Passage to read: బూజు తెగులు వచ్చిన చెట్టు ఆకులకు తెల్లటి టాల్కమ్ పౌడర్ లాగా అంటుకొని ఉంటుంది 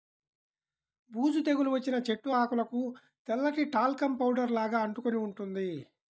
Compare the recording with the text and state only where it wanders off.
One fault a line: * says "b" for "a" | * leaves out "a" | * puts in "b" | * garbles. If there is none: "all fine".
all fine